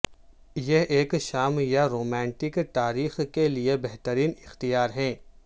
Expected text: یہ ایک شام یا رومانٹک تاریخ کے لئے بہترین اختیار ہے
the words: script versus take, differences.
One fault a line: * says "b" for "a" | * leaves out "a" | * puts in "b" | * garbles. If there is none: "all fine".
all fine